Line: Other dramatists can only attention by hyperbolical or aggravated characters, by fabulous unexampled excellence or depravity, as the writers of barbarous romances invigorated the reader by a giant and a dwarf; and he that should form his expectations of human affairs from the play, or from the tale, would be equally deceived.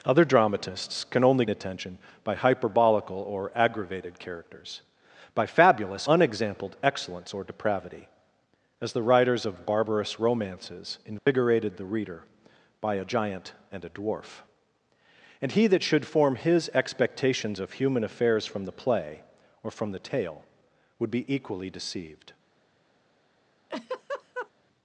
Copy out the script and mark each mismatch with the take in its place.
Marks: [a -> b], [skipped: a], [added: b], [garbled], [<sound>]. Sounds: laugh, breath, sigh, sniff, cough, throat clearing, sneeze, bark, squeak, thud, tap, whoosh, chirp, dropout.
Other dramatists can only attention by hyperbolical or aggravated characters, by fabulous unexampled excellence or depravity, as the writers of barbarous romances invigorated [dropout] the reader by a giant and a dwarf; and he that should form his expectations of human affairs from the play, or from the tale, would be equally deceived. [laugh]